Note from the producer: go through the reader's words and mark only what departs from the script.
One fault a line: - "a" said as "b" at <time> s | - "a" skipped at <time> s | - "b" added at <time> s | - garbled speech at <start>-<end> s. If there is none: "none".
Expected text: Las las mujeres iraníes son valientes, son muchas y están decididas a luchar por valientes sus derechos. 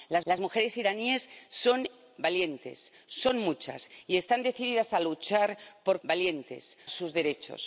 none